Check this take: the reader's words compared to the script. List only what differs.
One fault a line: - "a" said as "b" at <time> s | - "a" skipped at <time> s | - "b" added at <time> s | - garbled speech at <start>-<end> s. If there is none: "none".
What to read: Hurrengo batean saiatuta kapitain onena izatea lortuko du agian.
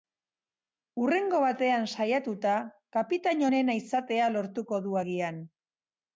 none